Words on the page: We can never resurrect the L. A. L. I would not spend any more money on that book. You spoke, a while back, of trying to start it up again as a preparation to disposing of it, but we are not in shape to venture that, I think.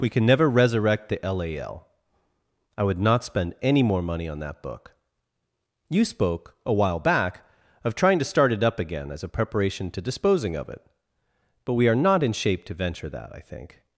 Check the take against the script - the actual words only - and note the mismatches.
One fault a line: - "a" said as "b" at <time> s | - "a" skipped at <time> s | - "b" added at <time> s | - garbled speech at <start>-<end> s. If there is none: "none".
none